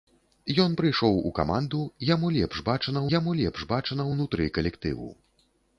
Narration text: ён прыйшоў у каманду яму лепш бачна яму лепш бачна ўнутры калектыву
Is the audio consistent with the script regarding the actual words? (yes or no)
yes